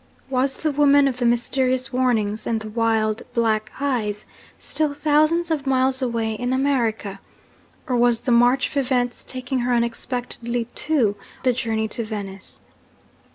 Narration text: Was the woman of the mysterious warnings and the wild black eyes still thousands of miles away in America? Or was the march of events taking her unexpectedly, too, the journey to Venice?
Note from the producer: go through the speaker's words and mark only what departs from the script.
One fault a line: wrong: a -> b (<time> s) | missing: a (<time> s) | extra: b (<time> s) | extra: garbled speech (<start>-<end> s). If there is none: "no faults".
no faults